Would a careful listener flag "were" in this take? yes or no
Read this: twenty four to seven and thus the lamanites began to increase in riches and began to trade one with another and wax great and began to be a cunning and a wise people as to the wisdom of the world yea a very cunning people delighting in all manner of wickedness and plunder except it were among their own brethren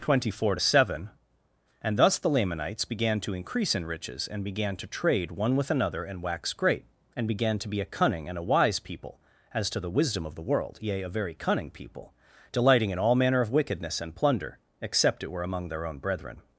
no